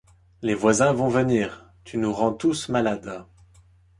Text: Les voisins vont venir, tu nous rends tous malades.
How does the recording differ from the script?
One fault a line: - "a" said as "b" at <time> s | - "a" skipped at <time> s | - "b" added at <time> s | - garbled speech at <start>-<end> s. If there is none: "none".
none